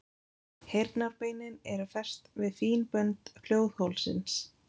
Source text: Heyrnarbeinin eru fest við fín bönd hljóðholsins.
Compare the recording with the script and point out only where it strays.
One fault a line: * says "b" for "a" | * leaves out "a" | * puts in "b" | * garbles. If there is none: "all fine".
all fine